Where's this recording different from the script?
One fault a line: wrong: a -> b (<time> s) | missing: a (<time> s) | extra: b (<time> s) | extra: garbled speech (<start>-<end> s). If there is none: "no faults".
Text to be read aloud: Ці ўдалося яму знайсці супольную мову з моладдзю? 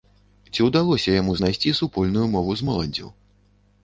no faults